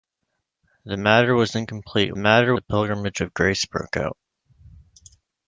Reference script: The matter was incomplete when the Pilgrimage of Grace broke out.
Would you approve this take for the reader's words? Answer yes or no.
no